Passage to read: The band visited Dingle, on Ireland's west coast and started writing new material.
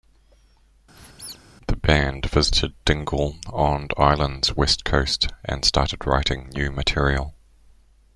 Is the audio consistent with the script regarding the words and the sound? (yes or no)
no